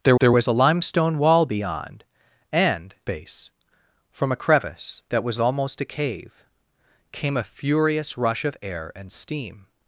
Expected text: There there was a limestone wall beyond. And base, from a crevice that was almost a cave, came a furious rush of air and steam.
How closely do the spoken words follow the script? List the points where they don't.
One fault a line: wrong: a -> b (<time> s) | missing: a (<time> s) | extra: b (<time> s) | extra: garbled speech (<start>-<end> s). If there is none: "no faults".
no faults